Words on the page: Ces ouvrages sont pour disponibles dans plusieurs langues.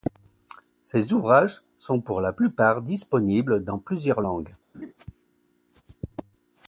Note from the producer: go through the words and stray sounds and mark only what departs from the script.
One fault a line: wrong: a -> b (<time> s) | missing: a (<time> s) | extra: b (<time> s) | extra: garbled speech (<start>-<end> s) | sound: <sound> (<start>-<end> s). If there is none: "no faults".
extra: la plupart (2.2 s)
sound: laugh (4.7-4.9 s)